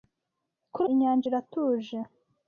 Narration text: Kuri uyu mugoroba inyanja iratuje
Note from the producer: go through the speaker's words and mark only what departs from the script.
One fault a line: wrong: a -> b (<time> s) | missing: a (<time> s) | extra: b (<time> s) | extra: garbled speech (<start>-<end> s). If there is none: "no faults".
missing: uyu mugoroba (0.8 s)